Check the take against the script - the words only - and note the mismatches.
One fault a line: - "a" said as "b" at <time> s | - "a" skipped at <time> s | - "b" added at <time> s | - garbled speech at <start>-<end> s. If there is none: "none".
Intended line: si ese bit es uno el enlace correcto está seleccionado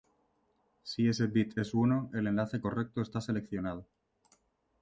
none